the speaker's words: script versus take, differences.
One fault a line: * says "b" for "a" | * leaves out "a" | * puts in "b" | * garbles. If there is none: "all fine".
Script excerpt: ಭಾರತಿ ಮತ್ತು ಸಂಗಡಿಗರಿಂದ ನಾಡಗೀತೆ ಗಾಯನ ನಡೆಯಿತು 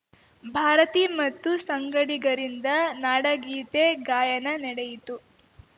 all fine